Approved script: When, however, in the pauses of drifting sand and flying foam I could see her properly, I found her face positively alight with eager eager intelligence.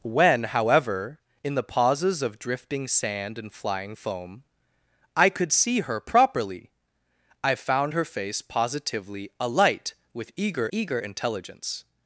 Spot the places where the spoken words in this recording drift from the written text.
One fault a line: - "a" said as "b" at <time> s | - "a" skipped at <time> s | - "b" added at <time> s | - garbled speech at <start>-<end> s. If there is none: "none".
none